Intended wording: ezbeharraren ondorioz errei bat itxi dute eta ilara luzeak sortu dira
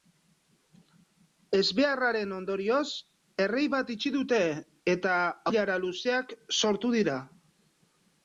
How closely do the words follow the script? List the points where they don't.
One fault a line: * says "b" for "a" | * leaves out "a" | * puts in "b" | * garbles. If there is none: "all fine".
all fine